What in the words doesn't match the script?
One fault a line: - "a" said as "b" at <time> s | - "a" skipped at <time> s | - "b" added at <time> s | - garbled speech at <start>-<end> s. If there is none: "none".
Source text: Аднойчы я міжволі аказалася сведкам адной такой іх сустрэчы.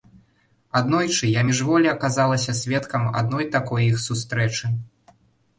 none